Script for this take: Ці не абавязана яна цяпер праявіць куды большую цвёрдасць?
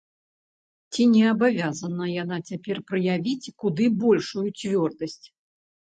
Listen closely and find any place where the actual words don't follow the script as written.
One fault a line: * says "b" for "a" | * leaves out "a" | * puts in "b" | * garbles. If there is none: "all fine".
all fine